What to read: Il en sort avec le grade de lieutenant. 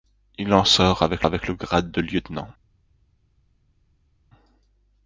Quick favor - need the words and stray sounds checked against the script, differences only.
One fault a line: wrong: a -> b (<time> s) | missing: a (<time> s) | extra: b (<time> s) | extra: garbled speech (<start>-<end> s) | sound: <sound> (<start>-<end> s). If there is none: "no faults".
extra: avec (1.2 s)